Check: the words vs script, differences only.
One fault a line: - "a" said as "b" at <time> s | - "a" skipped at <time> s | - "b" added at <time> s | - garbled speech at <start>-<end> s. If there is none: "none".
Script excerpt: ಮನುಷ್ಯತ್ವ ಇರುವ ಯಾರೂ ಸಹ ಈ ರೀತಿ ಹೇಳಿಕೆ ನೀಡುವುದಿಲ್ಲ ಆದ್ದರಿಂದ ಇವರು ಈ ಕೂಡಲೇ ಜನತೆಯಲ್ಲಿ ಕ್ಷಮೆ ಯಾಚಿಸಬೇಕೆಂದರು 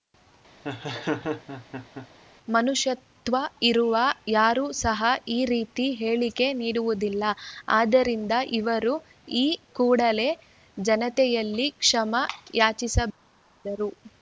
none